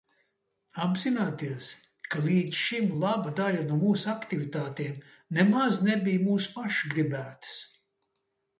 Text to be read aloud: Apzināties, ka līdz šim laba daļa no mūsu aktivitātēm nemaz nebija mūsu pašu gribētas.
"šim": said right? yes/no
yes